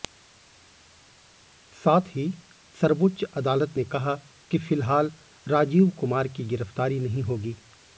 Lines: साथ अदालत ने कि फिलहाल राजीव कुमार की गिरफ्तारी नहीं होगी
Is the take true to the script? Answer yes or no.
no